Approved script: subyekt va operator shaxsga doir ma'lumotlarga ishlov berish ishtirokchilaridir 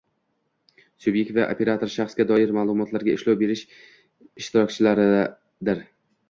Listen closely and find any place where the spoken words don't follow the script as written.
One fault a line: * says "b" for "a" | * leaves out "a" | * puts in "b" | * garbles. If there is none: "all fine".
all fine